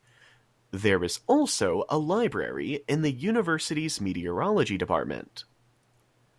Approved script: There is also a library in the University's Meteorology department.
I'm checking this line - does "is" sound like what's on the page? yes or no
yes